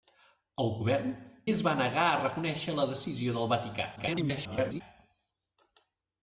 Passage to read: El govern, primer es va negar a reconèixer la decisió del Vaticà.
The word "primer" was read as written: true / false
false